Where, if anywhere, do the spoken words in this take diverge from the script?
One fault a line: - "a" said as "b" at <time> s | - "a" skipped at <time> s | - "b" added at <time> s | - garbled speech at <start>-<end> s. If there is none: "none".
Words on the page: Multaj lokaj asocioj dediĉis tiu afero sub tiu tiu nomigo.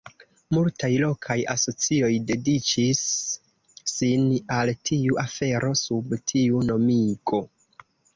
- "sin al" added at 3.9 s
- "tiu" skipped at 6.6 s